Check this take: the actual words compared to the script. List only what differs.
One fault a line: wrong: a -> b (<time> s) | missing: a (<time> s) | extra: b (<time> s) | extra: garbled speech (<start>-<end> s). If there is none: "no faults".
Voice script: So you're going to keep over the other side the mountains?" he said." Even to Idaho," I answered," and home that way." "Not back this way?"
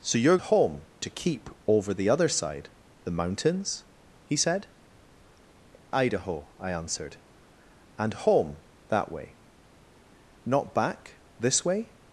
wrong: going -> home (0.4 s)
missing: Even to (4.7 s)